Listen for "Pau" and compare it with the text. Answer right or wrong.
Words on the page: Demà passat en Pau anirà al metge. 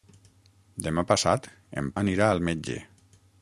wrong